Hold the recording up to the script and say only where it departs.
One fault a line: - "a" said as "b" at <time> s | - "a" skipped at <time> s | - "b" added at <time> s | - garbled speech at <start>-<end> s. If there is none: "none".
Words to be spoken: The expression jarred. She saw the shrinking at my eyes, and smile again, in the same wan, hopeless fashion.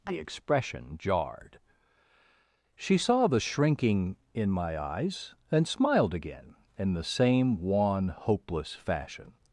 - "at" said as "in" at 4.3 s
- "smile" said as "smiled" at 5.7 s